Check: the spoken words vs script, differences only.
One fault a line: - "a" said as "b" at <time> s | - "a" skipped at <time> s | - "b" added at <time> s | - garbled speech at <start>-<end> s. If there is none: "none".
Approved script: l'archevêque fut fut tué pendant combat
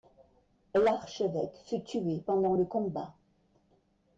- "fut" skipped at 1.8 s
- "le" added at 2.5 s